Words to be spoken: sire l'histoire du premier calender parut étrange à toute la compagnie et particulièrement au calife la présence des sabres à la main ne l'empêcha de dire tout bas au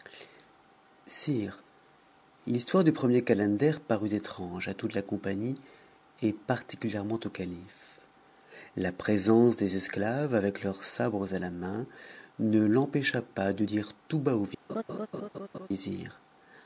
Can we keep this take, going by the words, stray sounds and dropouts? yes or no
no